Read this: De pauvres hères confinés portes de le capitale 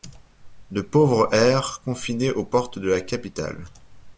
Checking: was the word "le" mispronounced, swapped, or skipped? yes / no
yes